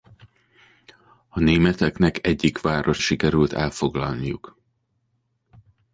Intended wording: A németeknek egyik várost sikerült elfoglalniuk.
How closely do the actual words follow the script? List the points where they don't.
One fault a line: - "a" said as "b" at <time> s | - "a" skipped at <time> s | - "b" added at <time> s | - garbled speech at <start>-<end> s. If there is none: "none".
none